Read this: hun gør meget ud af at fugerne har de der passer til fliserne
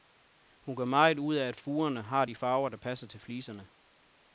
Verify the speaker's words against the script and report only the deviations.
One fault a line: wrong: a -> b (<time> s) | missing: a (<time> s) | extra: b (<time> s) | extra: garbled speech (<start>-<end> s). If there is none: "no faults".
extra: farver (2.3 s)